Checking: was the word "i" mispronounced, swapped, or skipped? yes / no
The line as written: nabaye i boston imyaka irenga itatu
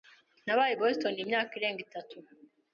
no